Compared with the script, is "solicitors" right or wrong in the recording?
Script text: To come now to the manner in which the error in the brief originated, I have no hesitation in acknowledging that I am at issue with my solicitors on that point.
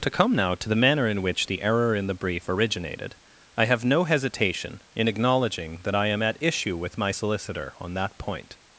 wrong